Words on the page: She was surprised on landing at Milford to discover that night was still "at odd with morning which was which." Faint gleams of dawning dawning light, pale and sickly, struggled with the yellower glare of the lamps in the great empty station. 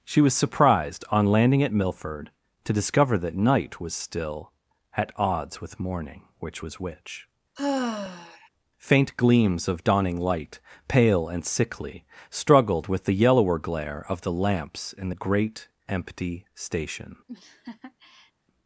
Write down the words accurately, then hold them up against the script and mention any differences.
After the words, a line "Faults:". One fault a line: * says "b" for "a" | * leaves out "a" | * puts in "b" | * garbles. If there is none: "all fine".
She was surprised on landing at Milford to discover that night was still "at odds with morning which was which." Faint gleams of dawning light, pale and sickly, struggled with the yellower glare of the lamps in the great empty station.
Faults:
* says "odds" for "odd"
* leaves out "dawning"